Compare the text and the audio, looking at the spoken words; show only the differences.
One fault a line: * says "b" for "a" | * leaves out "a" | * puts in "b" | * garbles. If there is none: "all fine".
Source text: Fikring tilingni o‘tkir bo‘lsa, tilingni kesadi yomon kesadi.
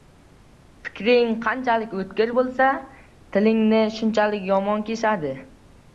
* says "qanchalik" for "tilingni"
* says "shunchalik" for "kesadi"